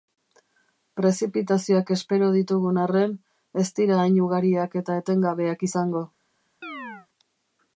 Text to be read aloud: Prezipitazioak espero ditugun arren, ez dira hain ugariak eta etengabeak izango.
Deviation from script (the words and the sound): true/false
true